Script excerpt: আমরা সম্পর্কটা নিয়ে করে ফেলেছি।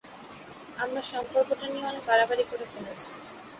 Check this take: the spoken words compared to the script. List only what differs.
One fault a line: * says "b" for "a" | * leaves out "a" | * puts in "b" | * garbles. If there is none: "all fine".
* puts in "অনেক বাড়াবাড়ি"